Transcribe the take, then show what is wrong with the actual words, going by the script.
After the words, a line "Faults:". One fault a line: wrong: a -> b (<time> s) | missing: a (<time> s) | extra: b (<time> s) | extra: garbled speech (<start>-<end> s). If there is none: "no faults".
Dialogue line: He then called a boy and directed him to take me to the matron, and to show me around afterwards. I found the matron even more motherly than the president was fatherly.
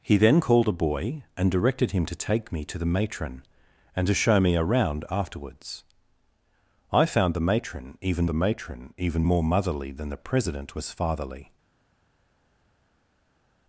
He then called a boy and directed him to take me to the matron, and to show me around afterwards. I found the matron even the matron even more motherly than the president was fatherly.
Faults:
extra: the matron even (8.3 s)